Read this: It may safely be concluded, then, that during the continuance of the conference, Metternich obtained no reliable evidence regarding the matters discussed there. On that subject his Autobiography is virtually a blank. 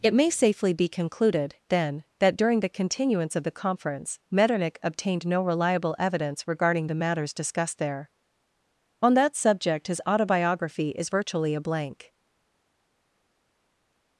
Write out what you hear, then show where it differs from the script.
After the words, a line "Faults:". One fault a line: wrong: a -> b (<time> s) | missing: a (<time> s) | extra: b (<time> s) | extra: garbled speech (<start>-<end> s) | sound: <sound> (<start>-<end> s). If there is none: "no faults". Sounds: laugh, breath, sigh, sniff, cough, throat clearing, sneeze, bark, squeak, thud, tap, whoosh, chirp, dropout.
It may safely be concluded, then, that during the continuance of the conference, Metternich obtained no reliable evidence regarding the matters discussed there. On that subject his Autobiography is virtually a blank.
Faults:
no faults